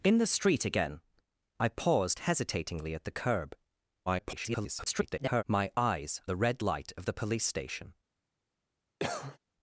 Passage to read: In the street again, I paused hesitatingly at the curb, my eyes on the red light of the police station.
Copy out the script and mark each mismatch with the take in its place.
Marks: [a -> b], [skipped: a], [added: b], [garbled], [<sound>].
In the street again, I paused hesitatingly at the curb, [garbled] my eyes [skipped: on] the red light of the police station. [cough]